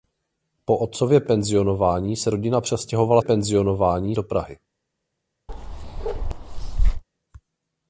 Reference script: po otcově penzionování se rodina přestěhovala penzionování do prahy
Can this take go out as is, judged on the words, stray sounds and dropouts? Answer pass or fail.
fail